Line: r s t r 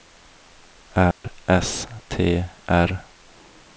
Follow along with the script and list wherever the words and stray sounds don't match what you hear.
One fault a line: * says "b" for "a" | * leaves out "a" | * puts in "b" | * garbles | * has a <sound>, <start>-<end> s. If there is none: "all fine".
* has a dropout, 1.1-1.2 s